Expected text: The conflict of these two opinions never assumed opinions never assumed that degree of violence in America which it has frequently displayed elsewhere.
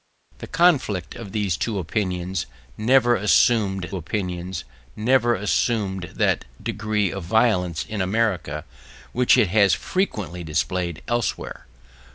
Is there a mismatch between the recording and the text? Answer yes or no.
no